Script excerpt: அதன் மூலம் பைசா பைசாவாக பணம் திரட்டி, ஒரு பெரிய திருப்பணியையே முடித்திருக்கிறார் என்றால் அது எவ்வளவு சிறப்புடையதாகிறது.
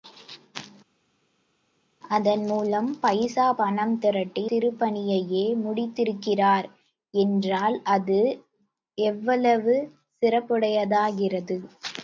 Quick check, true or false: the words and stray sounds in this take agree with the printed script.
false